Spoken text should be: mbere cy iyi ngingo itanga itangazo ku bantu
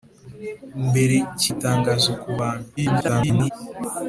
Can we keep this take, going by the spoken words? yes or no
no